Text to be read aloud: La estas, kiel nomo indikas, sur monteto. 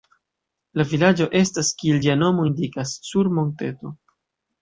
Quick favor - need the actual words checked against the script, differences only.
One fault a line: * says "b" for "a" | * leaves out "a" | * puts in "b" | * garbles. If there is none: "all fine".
* puts in "vilaĝo"
* puts in "ĝia"